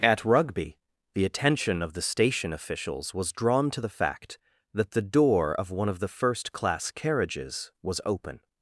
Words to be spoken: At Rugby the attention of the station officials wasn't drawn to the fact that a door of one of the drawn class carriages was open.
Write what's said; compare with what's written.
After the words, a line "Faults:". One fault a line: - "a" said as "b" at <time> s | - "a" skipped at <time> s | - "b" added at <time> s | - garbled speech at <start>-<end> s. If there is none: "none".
At Rugby the attention of the station officials was drawn to the fact that the door of one of the first class carriages was open.
Faults:
- "wasn't" said as "was" at 3.1 s
- "a" said as "the" at 4.9 s
- "drawn" said as "first" at 6.1 s